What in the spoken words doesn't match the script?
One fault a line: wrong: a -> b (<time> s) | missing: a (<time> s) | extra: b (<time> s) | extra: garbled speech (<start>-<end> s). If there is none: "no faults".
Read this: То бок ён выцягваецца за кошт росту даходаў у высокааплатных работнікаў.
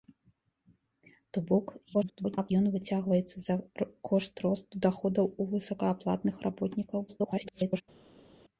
extra: garbled speech (1.9-2.5 s)
extra: garbled speech (7.1-7.8 s)